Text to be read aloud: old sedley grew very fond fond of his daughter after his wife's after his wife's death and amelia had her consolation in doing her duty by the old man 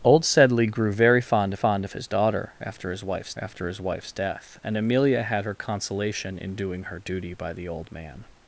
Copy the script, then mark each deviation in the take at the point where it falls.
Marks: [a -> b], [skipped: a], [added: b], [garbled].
old sedley grew very fond fond of his daughter after his wife's after his wife's death and amelia had her consolation in doing her duty by the old man